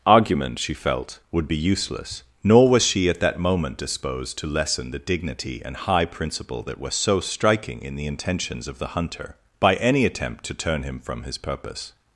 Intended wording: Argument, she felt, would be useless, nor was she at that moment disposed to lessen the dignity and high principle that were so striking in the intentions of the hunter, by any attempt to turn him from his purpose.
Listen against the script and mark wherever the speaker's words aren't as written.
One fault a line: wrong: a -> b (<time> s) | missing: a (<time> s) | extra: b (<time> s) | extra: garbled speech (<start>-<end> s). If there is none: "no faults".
no faults